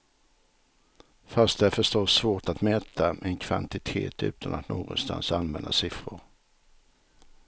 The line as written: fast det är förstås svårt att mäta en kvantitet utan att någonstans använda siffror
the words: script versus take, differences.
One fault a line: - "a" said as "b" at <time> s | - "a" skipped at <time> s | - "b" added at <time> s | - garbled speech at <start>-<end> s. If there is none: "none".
none